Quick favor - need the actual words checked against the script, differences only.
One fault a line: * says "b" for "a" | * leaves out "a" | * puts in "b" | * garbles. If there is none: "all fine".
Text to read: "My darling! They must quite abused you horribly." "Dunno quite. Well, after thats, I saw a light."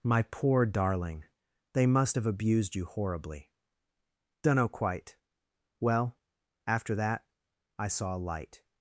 * puts in "poor"
* says "have" for "quite"
* says "that" for "thats"